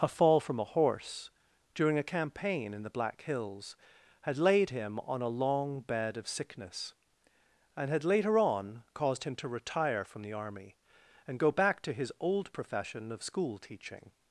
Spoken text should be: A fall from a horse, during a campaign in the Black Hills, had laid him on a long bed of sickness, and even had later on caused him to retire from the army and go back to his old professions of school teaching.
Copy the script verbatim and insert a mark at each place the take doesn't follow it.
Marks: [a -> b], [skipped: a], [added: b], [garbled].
A fall from a horse, during a campaign in the Black Hills, had laid him on a long bed of sickness, and [skipped: even] had later on caused him to retire from the army and go back to his old [professions -> profession] of school teaching.